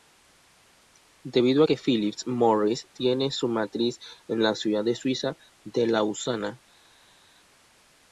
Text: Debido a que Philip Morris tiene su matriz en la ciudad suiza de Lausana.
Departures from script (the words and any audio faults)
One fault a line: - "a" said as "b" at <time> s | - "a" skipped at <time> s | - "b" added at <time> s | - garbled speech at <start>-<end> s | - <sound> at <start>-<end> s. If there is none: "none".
none